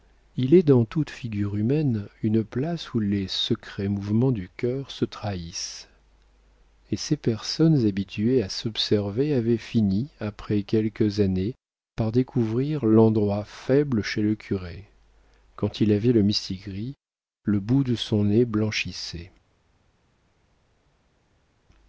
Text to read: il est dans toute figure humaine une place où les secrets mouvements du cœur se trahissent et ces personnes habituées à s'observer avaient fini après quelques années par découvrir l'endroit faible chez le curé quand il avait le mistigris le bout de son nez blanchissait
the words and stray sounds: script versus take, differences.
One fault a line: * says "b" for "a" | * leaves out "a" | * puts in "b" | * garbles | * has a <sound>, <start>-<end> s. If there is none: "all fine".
all fine